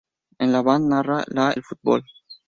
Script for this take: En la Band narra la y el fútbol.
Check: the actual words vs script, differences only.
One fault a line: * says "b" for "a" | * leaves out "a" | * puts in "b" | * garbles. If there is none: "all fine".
* leaves out "y"